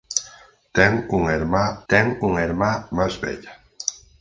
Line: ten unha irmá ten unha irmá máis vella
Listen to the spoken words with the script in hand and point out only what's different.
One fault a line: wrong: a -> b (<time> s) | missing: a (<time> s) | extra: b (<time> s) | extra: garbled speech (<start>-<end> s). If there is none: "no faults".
no faults